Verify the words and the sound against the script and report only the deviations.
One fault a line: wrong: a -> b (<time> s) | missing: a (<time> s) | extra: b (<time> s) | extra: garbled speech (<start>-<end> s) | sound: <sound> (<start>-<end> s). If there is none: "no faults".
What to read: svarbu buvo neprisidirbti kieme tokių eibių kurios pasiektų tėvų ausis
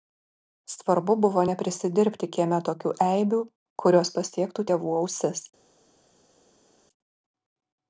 no faults